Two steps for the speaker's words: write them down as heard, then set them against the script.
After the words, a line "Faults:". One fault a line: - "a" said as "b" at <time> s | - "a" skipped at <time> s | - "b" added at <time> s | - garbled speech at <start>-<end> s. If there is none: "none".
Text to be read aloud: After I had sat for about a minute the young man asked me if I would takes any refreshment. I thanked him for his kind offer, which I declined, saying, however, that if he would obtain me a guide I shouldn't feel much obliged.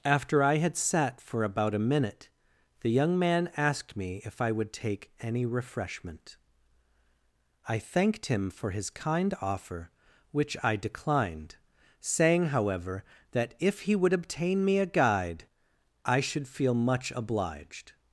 After I had sat for about a minute the young man asked me if I would take any refreshment. I thanked him for his kind offer, which I declined, saying, however, that if he would obtain me a guide I should feel much obliged.
Faults:
- "takes" said as "take" at 4.7 s
- "shouldn't" said as "should" at 16.2 s